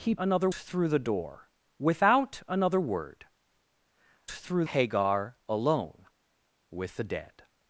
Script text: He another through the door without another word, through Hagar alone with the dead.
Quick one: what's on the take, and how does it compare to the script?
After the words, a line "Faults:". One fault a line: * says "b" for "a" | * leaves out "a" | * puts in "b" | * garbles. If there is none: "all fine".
He another through the door without another word, through Hagar alone with the dead.
Faults:
all fine